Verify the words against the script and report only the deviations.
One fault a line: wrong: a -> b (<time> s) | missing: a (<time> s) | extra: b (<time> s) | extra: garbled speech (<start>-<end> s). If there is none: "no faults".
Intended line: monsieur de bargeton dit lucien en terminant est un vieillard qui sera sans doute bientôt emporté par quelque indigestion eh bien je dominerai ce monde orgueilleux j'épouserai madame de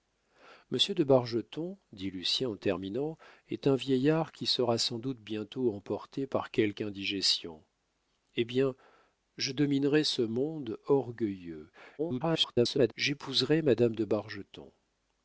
extra: garbled speech (12.0-12.9 s)